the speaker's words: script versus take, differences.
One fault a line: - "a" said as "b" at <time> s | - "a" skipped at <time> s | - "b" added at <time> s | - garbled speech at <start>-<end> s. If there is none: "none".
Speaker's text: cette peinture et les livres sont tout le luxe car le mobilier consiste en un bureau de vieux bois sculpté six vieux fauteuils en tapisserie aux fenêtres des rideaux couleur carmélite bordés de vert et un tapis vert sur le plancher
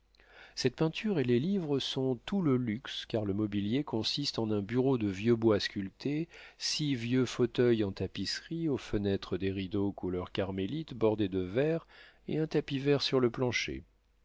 none